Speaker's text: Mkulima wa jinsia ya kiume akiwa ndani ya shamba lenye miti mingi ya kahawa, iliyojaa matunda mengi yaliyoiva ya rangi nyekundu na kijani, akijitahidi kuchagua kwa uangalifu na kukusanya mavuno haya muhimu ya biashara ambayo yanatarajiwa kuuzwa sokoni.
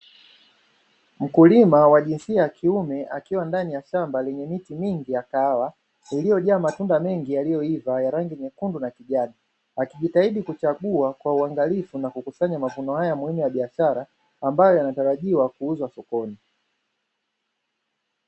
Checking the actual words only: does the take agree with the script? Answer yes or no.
yes